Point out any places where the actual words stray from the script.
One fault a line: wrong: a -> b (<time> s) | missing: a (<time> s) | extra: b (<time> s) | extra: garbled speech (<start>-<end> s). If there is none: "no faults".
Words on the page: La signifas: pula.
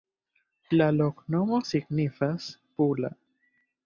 extra: loknomo (0.9 s)